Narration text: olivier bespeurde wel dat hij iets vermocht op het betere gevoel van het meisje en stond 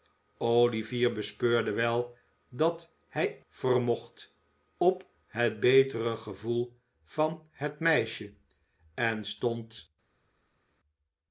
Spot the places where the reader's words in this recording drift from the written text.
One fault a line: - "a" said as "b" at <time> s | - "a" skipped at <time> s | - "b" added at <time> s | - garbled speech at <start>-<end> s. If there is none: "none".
- "iets" skipped at 3.4 s